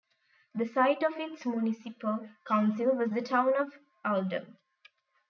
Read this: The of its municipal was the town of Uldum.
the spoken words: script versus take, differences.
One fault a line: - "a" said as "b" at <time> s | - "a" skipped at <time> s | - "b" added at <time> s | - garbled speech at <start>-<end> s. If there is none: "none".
- "site" added at 0.7 s
- "council" added at 2.4 s